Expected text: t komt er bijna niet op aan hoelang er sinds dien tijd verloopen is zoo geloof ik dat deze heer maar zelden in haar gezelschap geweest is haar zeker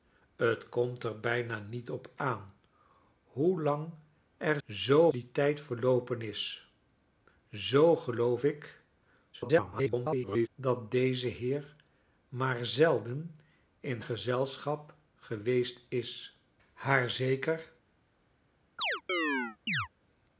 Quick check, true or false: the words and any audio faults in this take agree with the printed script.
false